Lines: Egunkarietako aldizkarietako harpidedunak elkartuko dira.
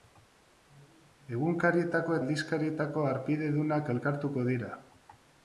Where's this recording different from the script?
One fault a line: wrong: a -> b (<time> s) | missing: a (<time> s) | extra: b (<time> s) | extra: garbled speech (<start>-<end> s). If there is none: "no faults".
no faults